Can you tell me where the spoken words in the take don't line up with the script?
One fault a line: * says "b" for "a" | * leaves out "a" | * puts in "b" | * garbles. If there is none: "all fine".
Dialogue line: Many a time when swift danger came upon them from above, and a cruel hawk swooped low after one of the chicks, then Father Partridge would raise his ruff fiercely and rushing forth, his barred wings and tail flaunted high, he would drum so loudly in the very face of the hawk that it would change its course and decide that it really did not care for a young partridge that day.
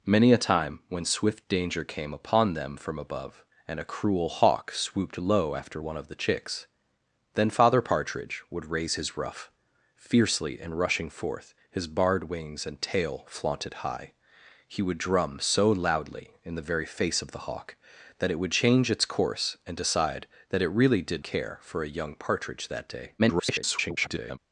* leaves out "not"
* garbles